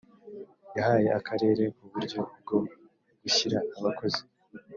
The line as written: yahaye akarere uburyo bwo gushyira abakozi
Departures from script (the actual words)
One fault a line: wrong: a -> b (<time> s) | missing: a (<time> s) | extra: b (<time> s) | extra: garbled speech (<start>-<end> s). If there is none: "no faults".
no faults